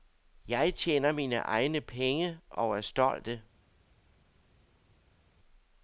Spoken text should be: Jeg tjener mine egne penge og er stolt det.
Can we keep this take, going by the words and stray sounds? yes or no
yes